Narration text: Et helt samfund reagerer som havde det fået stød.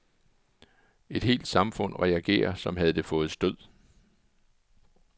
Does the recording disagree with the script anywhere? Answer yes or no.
no